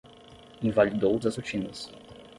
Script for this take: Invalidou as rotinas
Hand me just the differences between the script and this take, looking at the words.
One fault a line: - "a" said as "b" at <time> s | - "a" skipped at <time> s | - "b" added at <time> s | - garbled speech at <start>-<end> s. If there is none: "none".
none